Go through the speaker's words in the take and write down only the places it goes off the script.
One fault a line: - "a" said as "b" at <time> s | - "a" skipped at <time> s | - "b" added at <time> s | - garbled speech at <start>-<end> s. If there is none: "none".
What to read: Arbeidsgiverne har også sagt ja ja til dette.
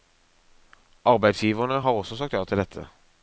- "ja" skipped at 2.4 s